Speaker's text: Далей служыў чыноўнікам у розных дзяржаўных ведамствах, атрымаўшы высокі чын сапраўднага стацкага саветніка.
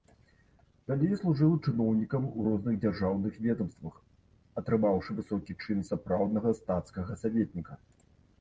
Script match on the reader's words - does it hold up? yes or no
yes